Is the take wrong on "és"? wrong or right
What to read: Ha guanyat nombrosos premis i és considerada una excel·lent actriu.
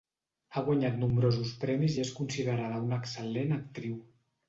right